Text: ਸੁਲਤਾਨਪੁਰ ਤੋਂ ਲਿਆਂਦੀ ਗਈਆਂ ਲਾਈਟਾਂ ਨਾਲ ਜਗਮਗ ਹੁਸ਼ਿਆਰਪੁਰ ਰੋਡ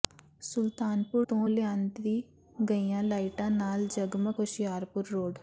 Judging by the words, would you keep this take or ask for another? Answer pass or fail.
pass